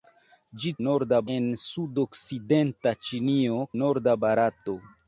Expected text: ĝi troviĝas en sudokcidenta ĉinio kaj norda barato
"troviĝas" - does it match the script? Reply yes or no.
no